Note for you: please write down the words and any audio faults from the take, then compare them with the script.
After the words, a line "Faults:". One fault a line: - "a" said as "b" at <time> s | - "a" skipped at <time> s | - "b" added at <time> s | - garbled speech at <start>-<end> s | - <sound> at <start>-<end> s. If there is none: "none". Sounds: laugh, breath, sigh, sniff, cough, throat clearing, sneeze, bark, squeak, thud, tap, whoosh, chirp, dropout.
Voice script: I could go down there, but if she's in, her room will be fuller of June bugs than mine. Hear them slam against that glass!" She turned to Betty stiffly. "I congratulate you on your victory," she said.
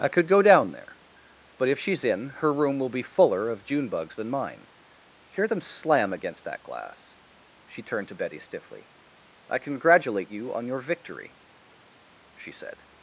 I could go down there, but if she's in, her room will be fuller of June bugs than mine. Hear them slam against that glass!" She turned to Betty stiffly. "I congratulate you on your victory," she said.
Faults:
none